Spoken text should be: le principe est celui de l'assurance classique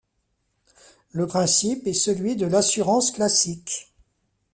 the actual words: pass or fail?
pass